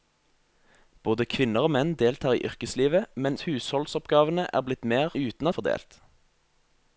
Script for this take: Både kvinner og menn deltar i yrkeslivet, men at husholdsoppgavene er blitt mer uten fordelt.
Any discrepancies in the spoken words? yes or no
no